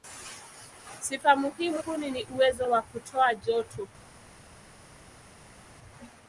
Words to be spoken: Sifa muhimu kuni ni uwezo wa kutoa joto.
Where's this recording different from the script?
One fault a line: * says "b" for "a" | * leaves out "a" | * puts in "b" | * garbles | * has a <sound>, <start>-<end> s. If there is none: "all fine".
all fine